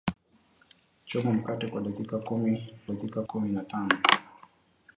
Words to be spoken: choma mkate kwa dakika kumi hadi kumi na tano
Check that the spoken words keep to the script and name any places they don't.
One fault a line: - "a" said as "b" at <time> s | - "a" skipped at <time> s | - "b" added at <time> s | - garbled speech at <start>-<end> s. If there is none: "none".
- "hadi" said as "dakika" at 2.8 s